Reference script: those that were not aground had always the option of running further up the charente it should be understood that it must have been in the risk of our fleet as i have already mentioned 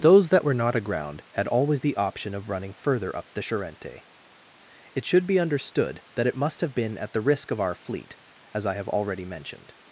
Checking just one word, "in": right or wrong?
wrong